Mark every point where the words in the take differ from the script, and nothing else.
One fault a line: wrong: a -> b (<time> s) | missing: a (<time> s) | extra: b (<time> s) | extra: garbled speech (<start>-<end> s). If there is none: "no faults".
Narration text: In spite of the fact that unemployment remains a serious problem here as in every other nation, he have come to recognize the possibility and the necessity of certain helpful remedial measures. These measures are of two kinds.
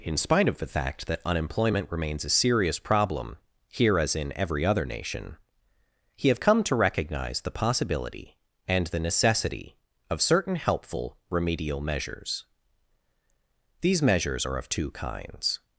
no faults